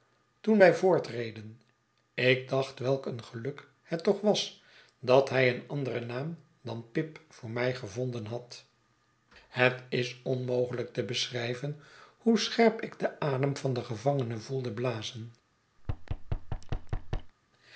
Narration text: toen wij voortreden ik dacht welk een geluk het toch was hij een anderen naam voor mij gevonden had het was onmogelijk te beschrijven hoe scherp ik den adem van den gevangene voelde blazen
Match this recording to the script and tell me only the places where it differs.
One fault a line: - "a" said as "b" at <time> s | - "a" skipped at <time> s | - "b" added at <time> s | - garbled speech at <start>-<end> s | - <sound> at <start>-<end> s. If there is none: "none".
- "dat" added at 5.0 s
- "dan pip" added at 6.6 s
- "was" said as "is" at 9.9 s
- thud at 15.8-17.3 s